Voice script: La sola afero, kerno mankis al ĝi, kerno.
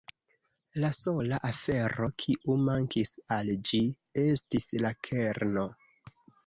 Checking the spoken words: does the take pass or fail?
fail